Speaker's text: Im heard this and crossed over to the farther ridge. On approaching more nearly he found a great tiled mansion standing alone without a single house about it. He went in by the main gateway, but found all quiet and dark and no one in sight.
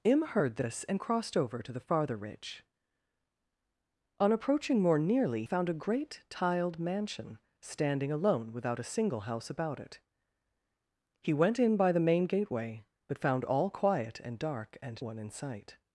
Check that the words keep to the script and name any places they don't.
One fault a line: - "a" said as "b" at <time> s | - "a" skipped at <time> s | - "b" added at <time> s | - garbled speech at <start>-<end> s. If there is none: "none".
- "he" skipped at 5.4 s
- "no" skipped at 15.0 s